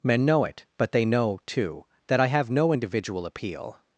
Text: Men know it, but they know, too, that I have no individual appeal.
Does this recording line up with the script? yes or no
yes